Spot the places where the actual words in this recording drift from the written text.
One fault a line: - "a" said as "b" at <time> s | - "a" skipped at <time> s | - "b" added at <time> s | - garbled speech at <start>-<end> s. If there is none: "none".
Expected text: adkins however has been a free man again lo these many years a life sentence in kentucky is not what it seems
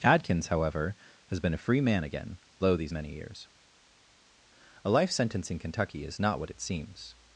none